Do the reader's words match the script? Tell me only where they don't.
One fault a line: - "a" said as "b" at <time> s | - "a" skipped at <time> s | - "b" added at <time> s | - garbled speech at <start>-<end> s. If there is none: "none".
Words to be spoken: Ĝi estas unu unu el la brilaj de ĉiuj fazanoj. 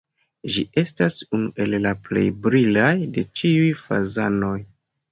- "unu" skipped at 1.5 s
- "plej" added at 2.1 s